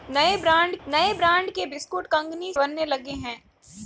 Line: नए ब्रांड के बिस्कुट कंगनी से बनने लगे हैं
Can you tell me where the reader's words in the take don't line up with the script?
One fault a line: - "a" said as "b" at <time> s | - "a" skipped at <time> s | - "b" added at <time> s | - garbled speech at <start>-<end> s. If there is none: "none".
- "नए ब्रांड" added at 0.9 s
- "से" skipped at 2.5 s